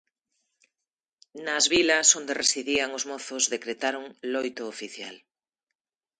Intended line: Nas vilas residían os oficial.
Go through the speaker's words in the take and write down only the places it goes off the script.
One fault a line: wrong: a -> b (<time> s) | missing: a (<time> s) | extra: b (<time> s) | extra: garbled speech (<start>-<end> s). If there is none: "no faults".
extra: onde (2.2 s)
extra: mozos decretaron loito (3.1 s)